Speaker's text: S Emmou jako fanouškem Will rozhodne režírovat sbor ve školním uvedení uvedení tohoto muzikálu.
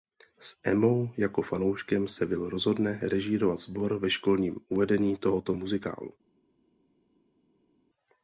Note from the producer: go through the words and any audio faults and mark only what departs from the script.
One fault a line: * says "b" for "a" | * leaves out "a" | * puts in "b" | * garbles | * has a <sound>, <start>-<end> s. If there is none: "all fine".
* puts in "se"
* leaves out "uvedení"